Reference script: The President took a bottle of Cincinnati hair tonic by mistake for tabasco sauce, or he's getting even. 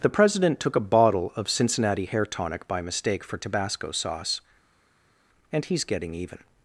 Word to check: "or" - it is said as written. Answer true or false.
false